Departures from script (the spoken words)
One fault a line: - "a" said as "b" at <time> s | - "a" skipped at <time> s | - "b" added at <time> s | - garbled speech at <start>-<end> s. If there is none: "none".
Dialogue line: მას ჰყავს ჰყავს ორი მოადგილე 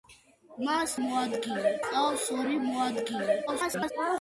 - "ჰყავს" said as "მოადგილე" at 1.0 s
- garbled speech at 3.5-3.9 s